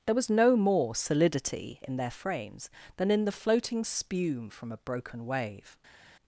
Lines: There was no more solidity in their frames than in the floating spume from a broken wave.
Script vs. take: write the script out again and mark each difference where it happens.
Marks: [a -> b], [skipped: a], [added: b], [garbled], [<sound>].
There was no more solidity in their frames than in the floating spume from a broken wave.